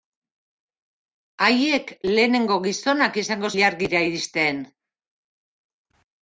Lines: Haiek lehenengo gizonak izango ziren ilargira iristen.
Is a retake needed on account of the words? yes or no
yes